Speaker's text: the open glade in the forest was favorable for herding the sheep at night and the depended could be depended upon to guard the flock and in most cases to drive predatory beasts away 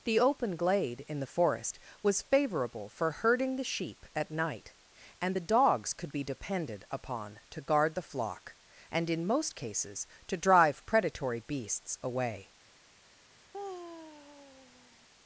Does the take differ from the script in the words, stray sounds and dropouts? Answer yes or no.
yes